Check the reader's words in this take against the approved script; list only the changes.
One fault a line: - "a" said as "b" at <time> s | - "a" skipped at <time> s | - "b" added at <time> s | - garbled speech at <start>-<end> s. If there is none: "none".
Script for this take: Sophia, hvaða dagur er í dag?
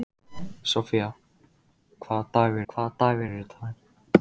- "hvaða dagur" added at 2.7 s